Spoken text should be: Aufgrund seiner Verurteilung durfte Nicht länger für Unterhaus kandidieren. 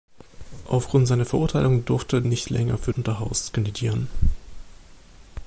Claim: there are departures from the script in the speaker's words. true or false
false